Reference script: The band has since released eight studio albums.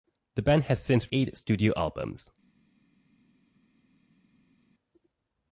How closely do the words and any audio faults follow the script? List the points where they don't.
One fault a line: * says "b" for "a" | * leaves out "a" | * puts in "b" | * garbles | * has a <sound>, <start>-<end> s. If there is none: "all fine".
* leaves out "released"